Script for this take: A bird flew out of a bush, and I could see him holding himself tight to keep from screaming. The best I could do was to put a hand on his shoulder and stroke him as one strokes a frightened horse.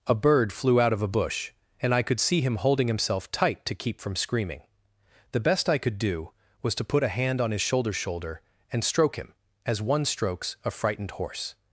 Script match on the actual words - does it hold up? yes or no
no